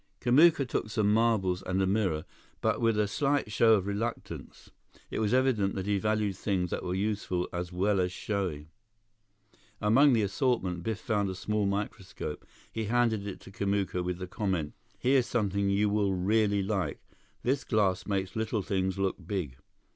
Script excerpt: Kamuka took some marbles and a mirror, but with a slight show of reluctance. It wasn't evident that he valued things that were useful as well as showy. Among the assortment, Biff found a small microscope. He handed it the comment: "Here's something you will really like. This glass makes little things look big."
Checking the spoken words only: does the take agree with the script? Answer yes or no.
no